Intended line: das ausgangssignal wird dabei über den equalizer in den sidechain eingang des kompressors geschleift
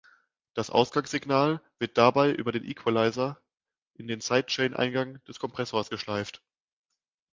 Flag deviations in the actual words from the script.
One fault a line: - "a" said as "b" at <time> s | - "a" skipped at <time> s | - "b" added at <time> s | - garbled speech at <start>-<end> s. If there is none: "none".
none